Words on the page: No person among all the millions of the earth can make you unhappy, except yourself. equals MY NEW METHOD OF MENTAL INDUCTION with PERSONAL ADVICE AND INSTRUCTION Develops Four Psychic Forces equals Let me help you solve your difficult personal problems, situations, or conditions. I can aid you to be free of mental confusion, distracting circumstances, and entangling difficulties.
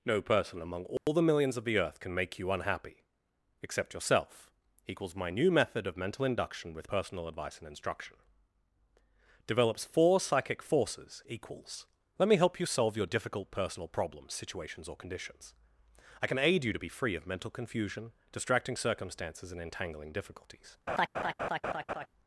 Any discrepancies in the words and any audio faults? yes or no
yes